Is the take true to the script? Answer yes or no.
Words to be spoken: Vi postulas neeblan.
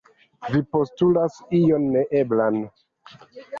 no